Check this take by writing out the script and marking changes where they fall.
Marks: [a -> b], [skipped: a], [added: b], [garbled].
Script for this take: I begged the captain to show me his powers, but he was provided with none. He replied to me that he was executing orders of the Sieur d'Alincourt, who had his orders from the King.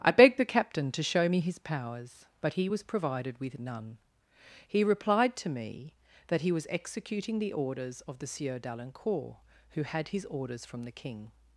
I begged the captain to show me his powers, but he was provided with none. He replied to me that he was executing [added: the] orders of the Sieur d'Alincourt, who had his orders from the King.